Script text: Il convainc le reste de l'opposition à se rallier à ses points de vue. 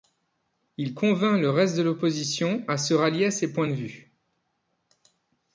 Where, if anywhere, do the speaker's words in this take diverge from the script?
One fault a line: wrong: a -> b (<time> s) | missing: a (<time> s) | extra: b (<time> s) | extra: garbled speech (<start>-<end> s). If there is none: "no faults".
no faults